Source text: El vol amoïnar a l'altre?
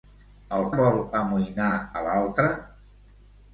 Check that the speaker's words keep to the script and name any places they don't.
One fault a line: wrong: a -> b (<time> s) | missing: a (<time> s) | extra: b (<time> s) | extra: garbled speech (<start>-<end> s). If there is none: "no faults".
no faults